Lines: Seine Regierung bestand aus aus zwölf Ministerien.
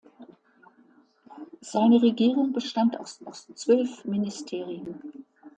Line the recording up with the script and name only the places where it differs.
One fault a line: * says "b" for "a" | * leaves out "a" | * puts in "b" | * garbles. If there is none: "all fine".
all fine